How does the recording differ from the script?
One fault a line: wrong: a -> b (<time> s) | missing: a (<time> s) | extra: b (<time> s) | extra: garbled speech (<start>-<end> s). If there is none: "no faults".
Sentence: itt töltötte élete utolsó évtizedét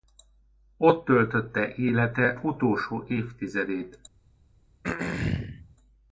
wrong: itt -> ott (0.8 s)